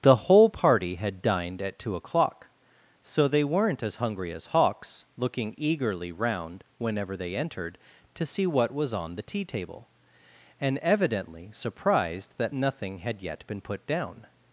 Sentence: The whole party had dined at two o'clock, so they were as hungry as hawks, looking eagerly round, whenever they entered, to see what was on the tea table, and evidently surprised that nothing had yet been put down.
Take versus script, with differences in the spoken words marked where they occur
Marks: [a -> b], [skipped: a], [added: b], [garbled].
The whole party had dined at two o'clock, so they [were -> weren't] as hungry as hawks, looking eagerly round, whenever they entered, to see what was on the tea table, and evidently surprised that nothing had yet been put down.